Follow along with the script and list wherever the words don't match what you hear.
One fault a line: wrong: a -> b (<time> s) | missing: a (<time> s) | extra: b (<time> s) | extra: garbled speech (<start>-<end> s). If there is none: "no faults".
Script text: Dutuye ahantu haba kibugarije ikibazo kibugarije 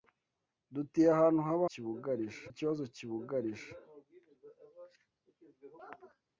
no faults